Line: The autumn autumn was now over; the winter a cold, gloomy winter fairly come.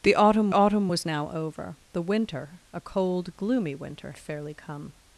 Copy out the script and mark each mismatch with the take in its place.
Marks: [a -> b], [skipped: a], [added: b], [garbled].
The autumn autumn was now over; the winter a cold, gloomy winter fairly come.